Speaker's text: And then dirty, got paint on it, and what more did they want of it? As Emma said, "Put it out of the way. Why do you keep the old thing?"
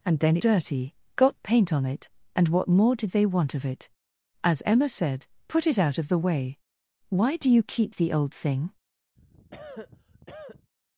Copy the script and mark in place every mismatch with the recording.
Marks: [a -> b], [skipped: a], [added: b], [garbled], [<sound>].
And then dirty, got paint on it, and what more did they want of it? As Emma said, "Put it out of the way. Why do you keep the old thing?" [cough]